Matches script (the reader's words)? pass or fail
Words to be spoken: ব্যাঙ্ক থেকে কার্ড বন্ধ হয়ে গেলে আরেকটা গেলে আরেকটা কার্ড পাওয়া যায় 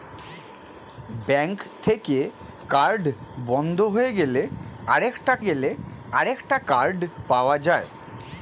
pass